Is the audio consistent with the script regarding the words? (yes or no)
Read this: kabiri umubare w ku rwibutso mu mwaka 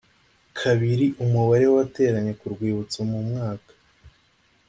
no